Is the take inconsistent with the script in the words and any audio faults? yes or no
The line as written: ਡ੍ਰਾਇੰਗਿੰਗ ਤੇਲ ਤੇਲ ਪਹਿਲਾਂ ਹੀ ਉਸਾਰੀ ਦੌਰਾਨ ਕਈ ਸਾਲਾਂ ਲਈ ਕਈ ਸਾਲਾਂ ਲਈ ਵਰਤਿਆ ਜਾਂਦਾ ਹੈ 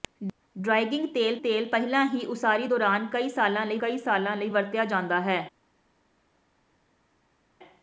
no